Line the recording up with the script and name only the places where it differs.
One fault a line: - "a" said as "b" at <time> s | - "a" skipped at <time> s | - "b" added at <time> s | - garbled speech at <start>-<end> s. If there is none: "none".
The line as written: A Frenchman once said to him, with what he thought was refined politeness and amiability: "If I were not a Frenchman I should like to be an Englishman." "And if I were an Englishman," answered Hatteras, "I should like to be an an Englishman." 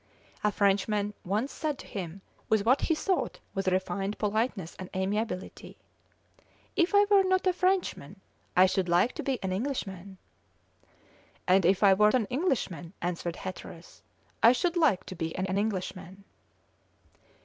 none